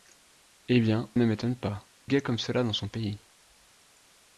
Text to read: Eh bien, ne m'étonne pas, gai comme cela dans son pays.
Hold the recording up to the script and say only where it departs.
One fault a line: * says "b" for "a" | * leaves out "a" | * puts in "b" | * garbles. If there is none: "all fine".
all fine